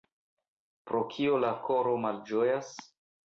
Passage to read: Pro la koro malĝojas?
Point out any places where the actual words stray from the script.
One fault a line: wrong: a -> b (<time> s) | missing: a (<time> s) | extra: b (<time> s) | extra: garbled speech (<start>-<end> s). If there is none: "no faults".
extra: kio (1.2 s)